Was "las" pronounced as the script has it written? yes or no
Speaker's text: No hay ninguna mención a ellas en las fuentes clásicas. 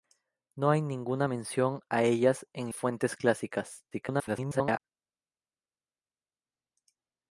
no